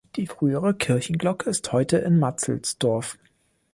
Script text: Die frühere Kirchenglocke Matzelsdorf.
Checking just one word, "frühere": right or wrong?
right